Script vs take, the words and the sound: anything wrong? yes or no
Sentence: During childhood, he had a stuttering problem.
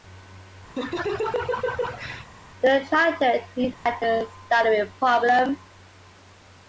yes